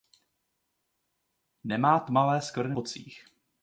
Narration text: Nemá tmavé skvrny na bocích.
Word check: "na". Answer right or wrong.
wrong